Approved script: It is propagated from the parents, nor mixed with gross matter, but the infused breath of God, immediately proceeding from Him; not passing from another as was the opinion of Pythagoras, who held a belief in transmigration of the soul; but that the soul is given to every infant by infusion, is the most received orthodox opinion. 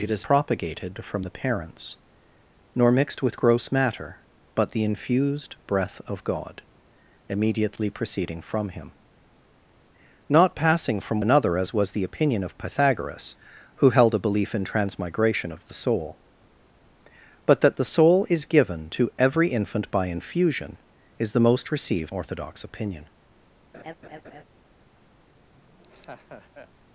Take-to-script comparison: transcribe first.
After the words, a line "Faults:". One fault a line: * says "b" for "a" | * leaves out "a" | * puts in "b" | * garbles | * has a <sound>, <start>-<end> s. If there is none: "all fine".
It is propagated from the parents, nor mixed with gross matter, but the infused breath of God, immediately proceeding from Him; not passing from another as was the opinion of Pythagoras, who held a belief in transmigration of the soul; but that the soul is given to every infant by infusion, is the most received orthodox opinion.
Faults:
* has a laugh, 23.7-24.4 s
* has a laugh, 25.5-26.7 s